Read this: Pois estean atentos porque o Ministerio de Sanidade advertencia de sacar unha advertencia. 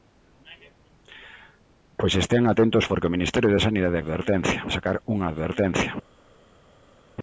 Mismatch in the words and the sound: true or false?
false